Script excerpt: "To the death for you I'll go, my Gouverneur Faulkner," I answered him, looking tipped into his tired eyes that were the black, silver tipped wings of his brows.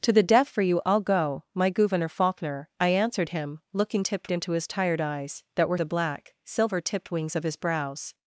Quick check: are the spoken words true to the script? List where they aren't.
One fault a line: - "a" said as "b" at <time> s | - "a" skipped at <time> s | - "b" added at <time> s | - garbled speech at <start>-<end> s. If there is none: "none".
none